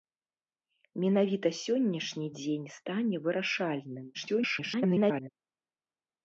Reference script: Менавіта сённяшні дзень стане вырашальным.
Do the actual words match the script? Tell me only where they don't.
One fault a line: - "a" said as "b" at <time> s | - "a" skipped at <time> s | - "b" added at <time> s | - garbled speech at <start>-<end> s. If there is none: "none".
- garbled speech at 4.1-5.3 s